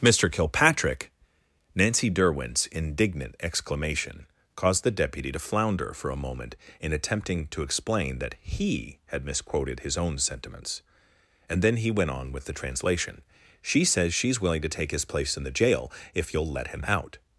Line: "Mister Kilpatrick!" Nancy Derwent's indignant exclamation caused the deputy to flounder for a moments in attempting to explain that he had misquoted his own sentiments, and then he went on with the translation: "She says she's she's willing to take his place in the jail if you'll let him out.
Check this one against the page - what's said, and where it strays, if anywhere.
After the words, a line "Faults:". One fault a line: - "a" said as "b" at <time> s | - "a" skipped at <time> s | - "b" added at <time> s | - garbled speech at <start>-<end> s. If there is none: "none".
"Mister Kilpatrick!" Nancy Derwent's indignant exclamation caused the deputy to flounder for a moment in attempting to explain that he had misquoted his own sentiments, and then he went on with the translation: "She says she's willing to take his place in the jail if you'll let him out.
Faults:
- "moments" said as "moment" at 6.2 s
- "she's" skipped at 14.4 s